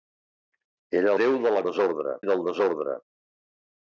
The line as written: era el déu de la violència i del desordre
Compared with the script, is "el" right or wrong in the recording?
wrong